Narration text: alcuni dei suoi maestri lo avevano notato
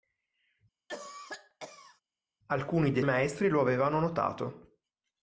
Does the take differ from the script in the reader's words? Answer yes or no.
yes